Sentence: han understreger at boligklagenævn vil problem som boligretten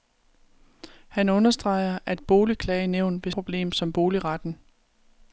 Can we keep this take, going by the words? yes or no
yes